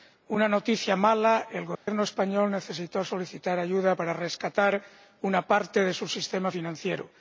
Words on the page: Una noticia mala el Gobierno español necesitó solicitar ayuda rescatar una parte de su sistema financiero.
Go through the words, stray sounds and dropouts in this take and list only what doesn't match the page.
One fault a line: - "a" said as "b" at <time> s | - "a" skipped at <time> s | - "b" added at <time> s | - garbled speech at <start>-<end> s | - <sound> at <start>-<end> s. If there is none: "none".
- dropout at 1.7-1.9 s
- "para" added at 3.9 s